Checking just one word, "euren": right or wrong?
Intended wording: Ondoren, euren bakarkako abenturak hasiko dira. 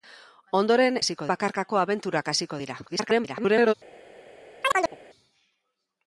wrong